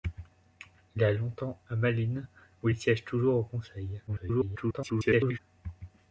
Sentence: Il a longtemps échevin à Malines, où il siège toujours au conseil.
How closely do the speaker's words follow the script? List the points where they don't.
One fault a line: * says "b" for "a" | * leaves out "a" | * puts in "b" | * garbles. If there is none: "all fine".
* leaves out "échevin"
* garbles